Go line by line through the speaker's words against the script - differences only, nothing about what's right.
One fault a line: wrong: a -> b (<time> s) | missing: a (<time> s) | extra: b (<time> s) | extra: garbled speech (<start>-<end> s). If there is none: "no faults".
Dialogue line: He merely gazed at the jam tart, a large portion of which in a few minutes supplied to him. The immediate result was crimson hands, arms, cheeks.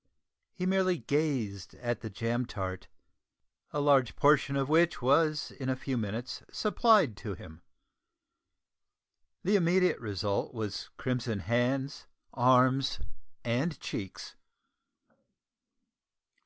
extra: was (5.0 s)
extra: and (13.4 s)